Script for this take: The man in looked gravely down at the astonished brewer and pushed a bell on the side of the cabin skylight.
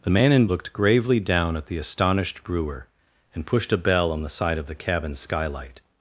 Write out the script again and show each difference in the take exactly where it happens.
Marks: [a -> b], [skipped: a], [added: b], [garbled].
The man in looked gravely down at the astonished brewer and pushed a bell on the side of the cabin skylight.